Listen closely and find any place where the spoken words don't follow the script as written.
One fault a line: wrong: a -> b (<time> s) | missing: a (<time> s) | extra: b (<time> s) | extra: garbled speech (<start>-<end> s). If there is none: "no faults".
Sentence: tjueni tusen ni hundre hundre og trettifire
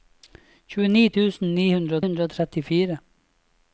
no faults